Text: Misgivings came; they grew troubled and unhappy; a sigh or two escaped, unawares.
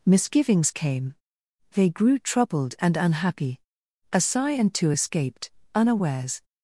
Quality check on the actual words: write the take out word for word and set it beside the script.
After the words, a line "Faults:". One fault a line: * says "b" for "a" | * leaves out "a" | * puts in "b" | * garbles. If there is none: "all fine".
Misgivings came; they grew troubled and unhappy; a sigh and two escaped, unawares.
Faults:
* says "and" for "or"